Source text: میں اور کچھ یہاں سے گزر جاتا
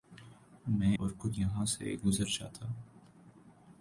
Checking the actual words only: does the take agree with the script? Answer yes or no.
yes